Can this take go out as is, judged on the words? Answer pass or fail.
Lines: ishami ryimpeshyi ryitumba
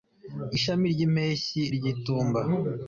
pass